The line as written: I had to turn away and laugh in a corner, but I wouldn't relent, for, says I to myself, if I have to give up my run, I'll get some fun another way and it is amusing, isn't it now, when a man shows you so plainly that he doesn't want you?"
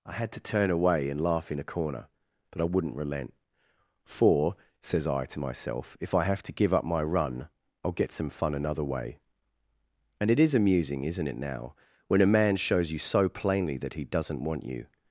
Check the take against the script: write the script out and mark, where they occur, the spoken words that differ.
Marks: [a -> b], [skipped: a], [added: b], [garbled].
I had to turn away and laugh in a corner, but I wouldn't relent, for, says I to myself, if I have to give up my run, I'll get some fun another way and it is amusing, isn't it now, when a man shows you so plainly that he doesn't want you?"